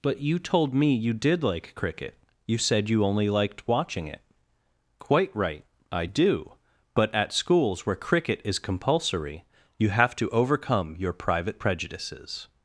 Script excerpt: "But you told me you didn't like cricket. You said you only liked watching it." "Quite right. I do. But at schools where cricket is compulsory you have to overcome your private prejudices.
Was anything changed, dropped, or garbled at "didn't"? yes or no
yes